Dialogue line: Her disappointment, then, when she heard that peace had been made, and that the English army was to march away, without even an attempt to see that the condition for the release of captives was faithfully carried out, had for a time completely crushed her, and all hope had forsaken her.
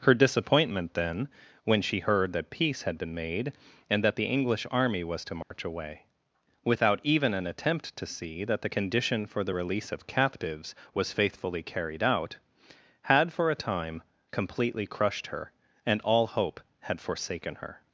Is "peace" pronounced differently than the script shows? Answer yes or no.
no